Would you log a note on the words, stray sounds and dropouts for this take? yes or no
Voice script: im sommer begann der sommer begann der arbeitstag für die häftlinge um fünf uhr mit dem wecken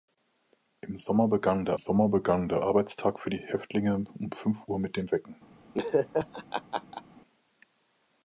yes